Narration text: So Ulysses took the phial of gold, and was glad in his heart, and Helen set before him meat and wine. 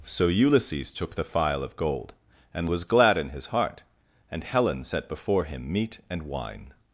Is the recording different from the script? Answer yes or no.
no